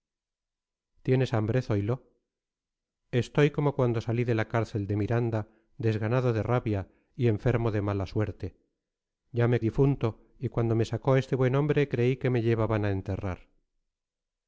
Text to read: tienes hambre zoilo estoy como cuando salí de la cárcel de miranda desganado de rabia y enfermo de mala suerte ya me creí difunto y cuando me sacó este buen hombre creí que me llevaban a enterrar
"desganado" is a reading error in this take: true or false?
false